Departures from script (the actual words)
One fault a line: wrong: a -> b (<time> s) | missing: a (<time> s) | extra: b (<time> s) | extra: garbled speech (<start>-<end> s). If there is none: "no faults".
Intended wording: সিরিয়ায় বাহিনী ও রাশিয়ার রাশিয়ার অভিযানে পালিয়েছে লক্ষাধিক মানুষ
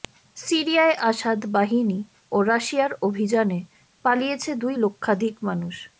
extra: আসাদ (1.0 s)
missing: রাশিয়ার (2.9 s)
extra: দুই (4.6 s)